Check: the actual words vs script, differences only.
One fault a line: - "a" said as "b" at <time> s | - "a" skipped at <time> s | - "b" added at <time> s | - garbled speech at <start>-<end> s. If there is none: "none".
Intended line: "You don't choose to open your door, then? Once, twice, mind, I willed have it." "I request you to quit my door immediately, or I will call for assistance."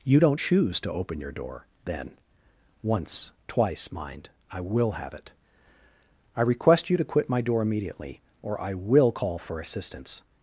- "willed" said as "will" at 4.6 s